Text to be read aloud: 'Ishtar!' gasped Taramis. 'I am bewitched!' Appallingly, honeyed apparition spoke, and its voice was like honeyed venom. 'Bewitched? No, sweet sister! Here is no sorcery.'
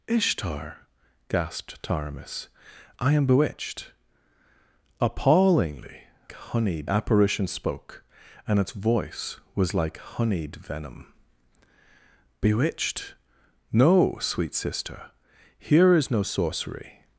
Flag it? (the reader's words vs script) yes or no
no